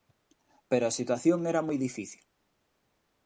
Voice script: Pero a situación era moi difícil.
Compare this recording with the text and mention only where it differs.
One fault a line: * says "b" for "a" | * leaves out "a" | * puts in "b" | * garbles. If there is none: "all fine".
all fine